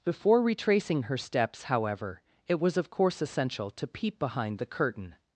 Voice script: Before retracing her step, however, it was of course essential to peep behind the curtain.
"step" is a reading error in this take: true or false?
true